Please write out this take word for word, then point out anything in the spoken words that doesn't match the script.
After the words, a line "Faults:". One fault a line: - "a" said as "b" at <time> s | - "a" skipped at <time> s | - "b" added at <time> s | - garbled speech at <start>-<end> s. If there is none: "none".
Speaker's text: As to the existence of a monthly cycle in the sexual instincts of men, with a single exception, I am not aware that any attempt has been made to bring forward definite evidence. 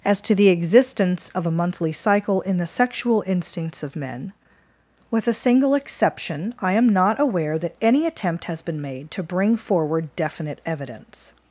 As to the existence of a monthly cycle in the sexual instincts of men, with a single exception, I am not aware that any attempt has been made to bring forward definite evidence.
Faults:
none